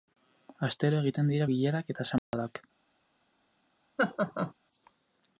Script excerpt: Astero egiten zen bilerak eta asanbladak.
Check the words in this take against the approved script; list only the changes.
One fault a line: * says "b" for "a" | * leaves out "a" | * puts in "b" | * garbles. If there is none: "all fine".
* says "dira" for "zen"